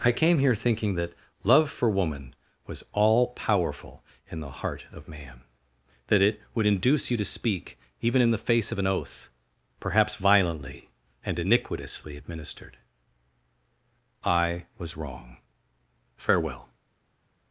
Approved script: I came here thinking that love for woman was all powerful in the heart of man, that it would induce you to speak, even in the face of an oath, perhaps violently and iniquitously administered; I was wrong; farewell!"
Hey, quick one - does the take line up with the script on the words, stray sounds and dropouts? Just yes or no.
yes